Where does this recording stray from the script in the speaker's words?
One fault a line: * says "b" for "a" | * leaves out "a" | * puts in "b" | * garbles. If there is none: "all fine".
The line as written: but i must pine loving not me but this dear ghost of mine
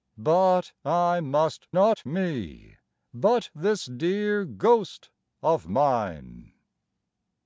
* leaves out "pine loving"